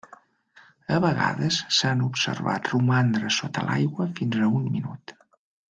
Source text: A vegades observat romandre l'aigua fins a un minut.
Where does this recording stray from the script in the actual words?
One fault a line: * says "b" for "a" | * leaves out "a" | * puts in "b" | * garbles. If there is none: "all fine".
* puts in "s'han"
* puts in "sota"